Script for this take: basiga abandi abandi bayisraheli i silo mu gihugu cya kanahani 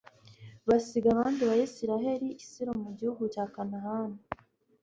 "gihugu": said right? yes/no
yes